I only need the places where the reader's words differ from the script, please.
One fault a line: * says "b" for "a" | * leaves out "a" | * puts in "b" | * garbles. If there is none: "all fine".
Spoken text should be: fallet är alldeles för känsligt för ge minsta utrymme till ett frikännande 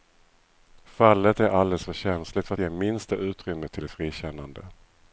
all fine